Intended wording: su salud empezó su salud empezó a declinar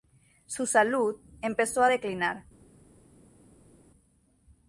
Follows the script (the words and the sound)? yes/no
no